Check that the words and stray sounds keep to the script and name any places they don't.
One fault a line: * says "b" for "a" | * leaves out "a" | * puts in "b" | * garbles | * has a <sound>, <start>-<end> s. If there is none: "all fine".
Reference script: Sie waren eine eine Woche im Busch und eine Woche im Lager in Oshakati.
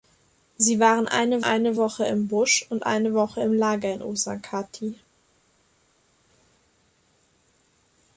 all fine